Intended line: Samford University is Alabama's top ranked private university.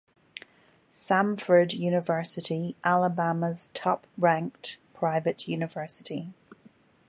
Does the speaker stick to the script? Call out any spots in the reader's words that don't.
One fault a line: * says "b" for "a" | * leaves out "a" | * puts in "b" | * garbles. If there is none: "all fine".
* leaves out "is"